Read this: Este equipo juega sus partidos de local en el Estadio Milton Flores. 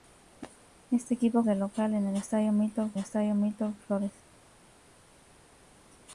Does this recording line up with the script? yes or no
no